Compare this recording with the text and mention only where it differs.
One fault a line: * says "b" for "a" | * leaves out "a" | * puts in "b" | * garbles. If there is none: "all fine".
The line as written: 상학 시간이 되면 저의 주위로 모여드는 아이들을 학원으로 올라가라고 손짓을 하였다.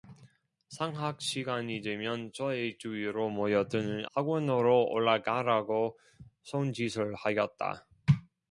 * leaves out "아이들을"